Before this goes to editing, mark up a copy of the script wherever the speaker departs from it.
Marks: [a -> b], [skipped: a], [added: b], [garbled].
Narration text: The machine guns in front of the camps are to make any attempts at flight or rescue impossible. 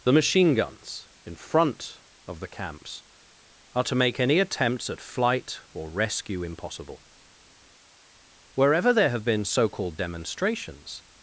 The machine guns in front of the camps are to make any attempts at flight or rescue impossible. [added: Wherever there have been so called demonstrations]